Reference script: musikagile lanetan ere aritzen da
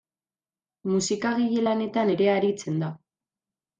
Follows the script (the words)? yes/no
yes